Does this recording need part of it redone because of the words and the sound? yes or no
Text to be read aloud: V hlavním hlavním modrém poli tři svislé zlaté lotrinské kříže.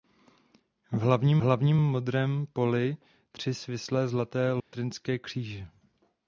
yes